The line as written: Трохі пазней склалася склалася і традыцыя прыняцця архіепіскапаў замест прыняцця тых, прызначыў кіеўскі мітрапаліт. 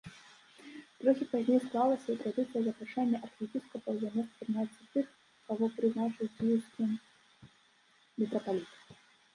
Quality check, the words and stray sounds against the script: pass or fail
fail